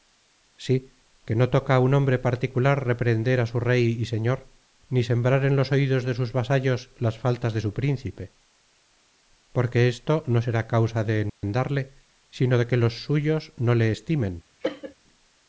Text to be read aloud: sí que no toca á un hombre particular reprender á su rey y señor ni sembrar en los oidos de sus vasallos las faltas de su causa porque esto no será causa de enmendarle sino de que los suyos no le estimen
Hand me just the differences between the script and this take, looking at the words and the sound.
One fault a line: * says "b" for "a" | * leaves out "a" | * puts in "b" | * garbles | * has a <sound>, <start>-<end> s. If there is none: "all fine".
* says "príncipe" for "causa"
* has a dropout, 11.3-11.4 s
* has a cough, 14.6-14.9 s